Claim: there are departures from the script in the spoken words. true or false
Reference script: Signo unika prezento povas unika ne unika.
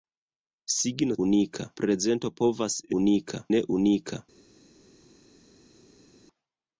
false